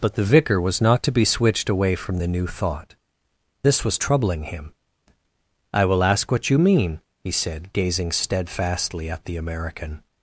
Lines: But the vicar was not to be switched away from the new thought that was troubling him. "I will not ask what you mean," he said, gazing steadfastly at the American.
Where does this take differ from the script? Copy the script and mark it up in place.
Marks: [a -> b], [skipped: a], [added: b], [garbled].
But the vicar was not to be switched away from the new thought [that -> this] was troubling him. "I will [skipped: not] ask what you mean," he said, gazing steadfastly at the American.